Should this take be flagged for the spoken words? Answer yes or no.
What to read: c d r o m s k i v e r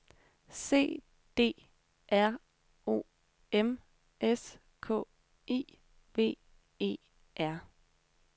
no